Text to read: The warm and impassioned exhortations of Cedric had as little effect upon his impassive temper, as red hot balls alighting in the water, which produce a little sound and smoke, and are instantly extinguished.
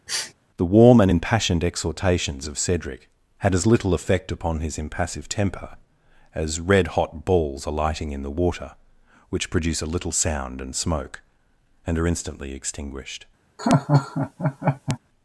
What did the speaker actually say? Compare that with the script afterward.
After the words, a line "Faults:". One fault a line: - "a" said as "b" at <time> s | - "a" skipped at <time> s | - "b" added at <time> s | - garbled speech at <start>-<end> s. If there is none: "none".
The warm and impassioned exhortations of Cedric had as little effect upon his impassive temper, as red hot balls alighting in the water, which produce a little sound and smoke, and are instantly extinguished.
Faults:
none